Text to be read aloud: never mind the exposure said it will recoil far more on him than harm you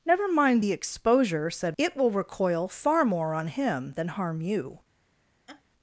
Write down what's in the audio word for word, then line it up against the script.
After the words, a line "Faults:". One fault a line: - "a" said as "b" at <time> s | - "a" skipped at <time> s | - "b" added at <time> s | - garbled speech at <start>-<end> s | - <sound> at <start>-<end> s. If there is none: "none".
never mind the exposure said it will recoil far more on him than harm you
Faults:
- laugh at 5.5-5.6 s